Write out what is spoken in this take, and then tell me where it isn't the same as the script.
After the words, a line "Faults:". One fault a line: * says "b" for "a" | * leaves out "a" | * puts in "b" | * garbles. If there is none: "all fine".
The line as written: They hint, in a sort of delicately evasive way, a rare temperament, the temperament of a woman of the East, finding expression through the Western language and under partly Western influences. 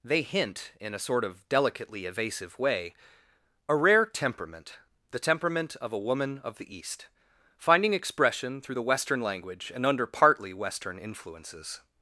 They hint, in a sort of delicately evasive way, a rare temperament, the temperament of a woman of the East, finding expression through the Western language and under partly Western influences.
Faults:
all fine